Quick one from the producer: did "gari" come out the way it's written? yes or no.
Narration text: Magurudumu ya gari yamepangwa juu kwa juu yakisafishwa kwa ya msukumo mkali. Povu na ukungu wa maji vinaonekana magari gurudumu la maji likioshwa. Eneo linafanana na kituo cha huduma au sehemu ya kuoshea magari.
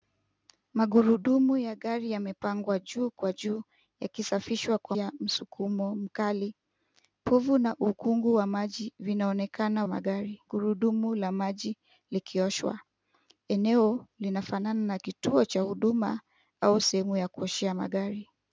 yes